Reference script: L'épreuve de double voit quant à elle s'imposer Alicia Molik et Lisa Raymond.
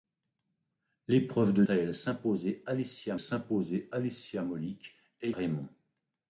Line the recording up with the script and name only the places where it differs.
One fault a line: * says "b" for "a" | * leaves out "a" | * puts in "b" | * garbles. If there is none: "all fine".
* leaves out "double voit quant"
* puts in "s'imposer Alicia"
* leaves out "Lisa"